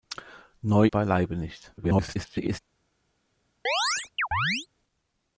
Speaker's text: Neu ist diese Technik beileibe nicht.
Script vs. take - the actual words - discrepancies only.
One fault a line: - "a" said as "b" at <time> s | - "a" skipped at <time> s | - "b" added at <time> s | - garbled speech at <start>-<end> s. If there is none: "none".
- "ist diese Technik" skipped at 0.9 s
- garbled speech at 1.8-2.6 s